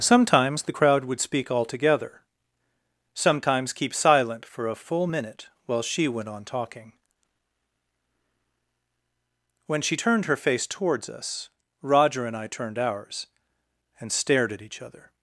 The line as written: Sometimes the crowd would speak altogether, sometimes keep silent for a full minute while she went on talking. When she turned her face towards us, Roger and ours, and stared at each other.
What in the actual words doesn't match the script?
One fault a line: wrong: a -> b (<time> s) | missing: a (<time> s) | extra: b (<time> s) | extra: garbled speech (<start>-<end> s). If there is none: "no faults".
extra: I turned (12.4 s)